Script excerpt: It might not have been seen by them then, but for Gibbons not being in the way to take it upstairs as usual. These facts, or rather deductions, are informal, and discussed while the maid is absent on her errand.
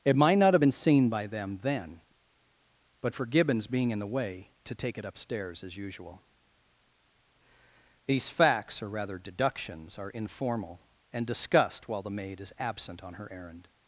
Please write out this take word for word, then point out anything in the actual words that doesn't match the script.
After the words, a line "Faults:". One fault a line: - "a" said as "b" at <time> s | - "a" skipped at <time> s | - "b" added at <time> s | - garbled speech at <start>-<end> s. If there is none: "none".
It might not have been seen by them then, but for Gibbons being in the way to take it upstairs as usual. These facts, or rather deductions, are informal, and discussed while the maid is absent on her errand.
Faults:
- "not" skipped at 3.7 s